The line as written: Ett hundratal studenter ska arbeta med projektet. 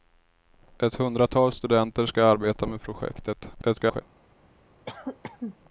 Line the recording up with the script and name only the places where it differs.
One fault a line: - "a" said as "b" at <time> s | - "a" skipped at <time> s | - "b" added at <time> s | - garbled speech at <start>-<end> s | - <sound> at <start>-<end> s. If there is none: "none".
- garbled speech at 3.5-4.0 s
- cough at 4.9-5.6 s